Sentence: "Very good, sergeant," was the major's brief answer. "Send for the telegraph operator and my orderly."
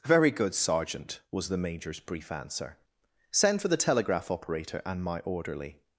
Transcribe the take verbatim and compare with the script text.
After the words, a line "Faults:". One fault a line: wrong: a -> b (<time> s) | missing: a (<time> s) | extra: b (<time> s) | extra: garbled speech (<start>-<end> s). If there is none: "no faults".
"Very good, sergeant," was the major's brief answer. "Send for the telegraph operator and my orderly."
Faults:
no faults